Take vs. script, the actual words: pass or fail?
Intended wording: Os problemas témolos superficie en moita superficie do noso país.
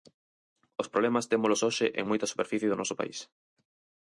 fail